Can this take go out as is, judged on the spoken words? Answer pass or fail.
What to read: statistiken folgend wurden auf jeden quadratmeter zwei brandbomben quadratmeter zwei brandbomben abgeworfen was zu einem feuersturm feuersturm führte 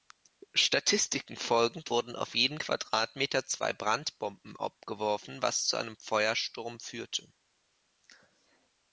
fail